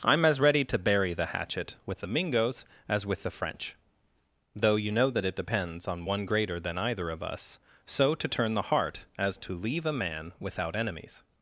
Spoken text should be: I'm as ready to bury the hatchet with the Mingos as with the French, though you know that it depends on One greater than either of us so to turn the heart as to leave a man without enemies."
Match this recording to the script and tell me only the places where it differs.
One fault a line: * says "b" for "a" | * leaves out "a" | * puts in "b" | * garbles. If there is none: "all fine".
all fine